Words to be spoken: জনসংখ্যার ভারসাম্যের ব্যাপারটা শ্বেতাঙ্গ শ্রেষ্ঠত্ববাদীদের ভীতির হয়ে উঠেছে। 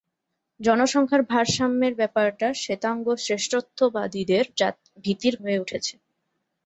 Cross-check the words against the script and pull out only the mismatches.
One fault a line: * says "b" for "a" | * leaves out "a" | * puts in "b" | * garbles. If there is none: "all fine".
all fine